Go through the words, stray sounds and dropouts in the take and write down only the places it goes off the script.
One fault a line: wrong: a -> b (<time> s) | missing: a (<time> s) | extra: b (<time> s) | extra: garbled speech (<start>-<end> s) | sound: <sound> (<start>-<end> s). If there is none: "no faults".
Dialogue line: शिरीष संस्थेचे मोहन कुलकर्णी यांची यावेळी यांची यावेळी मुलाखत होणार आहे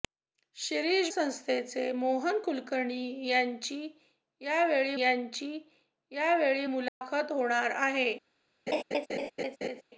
sound: dropout (6.9-7.0 s)
sound: laugh (8.7-9.8 s)